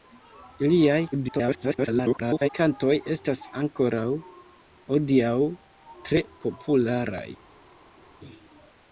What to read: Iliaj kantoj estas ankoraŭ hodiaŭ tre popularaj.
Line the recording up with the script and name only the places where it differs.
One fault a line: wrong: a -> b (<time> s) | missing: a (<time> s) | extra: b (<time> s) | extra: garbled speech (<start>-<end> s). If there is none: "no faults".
extra: garbled speech (1.1-2.5 s)